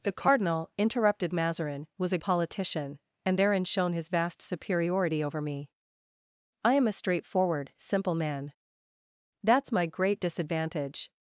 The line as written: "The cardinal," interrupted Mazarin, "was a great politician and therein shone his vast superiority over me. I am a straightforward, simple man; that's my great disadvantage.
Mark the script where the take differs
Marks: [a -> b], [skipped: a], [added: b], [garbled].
"The cardinal," interrupted Mazarin, "was a [skipped: great] politician and therein shone his vast superiority over me. I am a straightforward, simple man; that's my great disadvantage.